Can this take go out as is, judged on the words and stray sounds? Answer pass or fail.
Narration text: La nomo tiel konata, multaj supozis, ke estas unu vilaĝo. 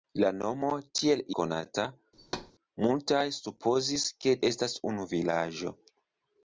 fail